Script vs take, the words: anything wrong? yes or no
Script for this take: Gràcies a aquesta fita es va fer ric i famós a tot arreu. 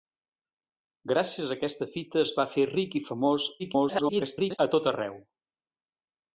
yes